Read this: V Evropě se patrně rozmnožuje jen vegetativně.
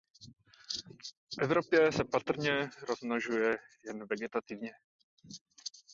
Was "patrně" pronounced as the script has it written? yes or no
yes